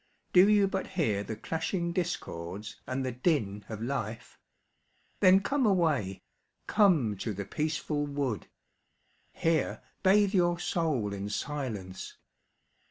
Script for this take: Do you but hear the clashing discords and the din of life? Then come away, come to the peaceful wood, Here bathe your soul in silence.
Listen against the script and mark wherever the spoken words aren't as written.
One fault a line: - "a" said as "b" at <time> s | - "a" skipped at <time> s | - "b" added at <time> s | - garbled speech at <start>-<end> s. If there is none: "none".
none